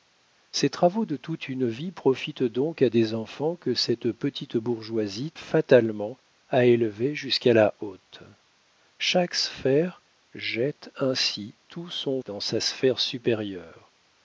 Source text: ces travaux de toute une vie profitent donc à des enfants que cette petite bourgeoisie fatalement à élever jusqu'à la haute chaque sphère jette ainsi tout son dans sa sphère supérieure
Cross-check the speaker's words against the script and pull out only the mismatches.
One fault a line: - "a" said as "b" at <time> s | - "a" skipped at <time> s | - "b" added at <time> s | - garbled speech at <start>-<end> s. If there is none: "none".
none